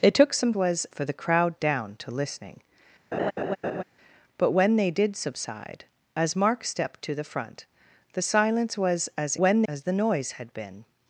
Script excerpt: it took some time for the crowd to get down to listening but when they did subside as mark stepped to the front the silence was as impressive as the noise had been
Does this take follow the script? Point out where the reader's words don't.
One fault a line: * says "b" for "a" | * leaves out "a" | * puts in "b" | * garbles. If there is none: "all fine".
* says "was" for "time"
* leaves out "to get"
* says "when" for "impressive"